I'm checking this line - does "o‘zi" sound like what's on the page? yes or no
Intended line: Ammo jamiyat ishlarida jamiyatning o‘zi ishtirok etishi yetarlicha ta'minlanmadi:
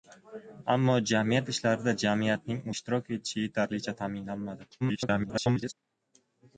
no